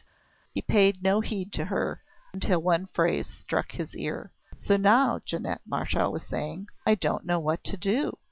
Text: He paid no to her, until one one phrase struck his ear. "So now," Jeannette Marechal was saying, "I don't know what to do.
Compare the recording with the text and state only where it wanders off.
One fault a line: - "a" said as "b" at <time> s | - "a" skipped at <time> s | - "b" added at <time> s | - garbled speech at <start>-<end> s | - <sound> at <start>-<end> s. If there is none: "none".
- "heed" added at 1.2 s
- "one" skipped at 2.9 s